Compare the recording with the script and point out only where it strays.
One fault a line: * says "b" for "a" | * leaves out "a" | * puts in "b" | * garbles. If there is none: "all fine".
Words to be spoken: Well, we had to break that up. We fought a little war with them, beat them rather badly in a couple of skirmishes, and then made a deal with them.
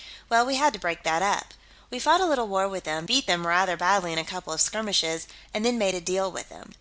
all fine